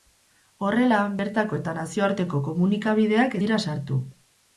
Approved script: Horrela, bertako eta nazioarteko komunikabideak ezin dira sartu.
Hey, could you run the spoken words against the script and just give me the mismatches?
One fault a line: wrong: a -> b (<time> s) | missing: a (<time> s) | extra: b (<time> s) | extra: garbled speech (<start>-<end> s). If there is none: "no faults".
missing: ezin (3.4 s)